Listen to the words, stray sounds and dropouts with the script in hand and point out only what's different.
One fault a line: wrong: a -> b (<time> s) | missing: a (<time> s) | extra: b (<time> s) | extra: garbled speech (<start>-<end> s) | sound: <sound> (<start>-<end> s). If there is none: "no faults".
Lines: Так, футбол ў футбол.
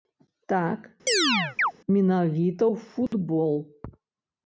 sound: chirp (1.1-1.7 s)
wrong: футбол -> менавіта (2.0 s)
sound: dropout (3.1-3.1 s)